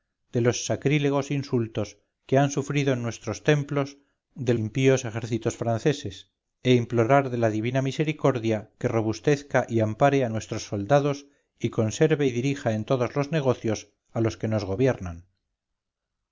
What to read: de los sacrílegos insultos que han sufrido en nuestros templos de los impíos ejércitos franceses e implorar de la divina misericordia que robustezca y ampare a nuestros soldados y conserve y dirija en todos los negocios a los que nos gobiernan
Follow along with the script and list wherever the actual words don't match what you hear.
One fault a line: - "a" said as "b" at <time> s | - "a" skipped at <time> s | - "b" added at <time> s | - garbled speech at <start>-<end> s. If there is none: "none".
- "los" skipped at 4.5 s